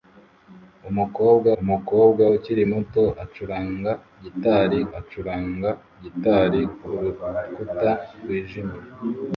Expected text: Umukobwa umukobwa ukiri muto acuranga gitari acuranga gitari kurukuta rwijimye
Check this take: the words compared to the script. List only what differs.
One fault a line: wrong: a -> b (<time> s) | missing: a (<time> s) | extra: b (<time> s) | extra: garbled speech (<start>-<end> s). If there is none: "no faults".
no faults